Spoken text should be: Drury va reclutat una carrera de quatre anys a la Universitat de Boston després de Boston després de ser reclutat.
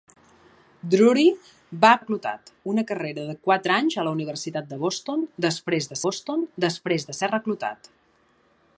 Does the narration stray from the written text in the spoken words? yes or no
no